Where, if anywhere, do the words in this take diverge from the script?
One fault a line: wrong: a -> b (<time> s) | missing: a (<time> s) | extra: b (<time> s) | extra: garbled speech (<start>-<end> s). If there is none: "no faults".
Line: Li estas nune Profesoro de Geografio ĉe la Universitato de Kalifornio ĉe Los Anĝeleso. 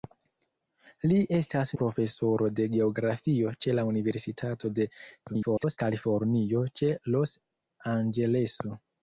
missing: nune (1.7 s)
extra: garbled speech (5.3-5.8 s)